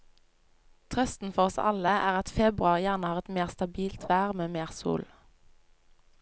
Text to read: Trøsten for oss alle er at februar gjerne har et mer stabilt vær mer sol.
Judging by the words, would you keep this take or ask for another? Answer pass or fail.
fail